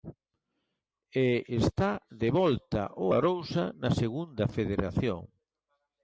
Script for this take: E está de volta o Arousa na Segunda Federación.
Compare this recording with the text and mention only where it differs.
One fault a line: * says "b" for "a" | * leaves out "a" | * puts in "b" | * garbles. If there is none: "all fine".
all fine